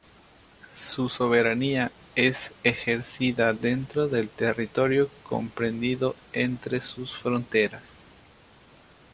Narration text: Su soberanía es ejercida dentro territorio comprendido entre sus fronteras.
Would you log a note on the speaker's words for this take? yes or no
yes